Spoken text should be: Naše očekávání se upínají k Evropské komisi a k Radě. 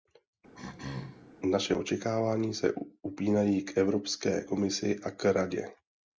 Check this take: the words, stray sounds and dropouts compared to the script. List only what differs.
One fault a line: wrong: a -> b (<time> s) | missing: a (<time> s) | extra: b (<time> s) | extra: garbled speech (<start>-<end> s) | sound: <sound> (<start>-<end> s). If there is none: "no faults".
sound: throat clearing (0.5-1.3 s)